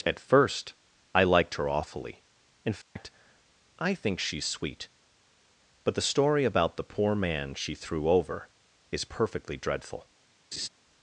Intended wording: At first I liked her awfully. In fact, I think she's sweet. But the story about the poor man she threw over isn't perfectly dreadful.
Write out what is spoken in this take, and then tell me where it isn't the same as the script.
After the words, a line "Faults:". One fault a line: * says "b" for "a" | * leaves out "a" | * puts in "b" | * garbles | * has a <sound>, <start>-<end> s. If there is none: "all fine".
At first I liked her awfully. In fact, I think she's sweet. But the story about the poor man she threw over is perfectly dreadful.
Faults:
* has a dropout, 2.8-3.0 s
* says "is" for "isn't"
* has a laugh, 10.5-10.7 s